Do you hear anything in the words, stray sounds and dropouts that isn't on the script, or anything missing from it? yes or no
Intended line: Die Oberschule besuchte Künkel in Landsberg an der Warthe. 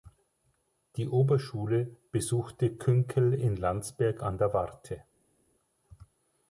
no